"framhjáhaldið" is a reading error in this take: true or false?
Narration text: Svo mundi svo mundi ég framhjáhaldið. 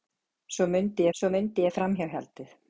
false